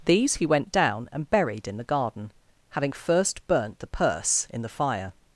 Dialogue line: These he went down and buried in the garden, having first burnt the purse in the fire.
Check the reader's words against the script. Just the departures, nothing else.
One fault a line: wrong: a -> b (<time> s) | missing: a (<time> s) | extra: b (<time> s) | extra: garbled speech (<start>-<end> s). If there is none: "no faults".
no faults